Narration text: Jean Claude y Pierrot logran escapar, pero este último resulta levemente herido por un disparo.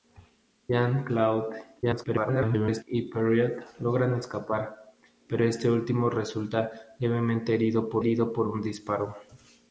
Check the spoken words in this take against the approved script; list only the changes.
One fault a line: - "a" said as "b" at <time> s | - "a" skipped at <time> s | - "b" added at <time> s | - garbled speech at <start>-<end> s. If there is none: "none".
- garbled speech at 1.8-2.8 s
- "herido por" added at 8.0 s